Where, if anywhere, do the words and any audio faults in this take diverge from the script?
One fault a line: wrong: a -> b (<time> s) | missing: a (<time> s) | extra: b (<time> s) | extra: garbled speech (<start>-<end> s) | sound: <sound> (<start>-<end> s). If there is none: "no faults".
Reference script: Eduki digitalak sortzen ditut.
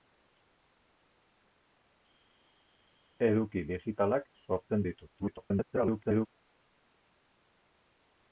extra: garbled speech (5.2-6.3 s)